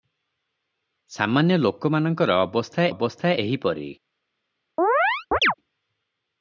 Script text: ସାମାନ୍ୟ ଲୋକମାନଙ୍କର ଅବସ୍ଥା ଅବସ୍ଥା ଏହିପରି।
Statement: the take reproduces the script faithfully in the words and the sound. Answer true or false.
false